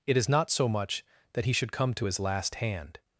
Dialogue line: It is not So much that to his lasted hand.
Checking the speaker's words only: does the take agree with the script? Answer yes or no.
no